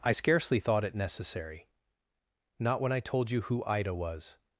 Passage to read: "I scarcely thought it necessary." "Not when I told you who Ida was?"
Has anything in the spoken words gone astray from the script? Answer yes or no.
no